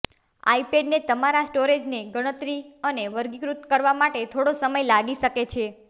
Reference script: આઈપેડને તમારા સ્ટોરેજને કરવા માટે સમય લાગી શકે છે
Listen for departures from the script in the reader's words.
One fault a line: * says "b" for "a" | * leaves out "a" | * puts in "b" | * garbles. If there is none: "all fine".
* puts in "ગણતરી અને વર્ગીકૃત"
* puts in "થોડો"